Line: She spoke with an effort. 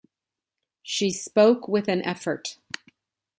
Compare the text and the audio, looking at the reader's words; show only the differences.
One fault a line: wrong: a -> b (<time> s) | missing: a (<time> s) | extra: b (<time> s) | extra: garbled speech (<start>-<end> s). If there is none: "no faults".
no faults